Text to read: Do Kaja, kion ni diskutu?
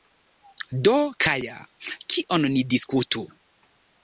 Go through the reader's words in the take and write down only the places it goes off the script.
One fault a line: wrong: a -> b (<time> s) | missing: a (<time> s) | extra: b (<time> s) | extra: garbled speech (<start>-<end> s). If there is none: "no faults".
no faults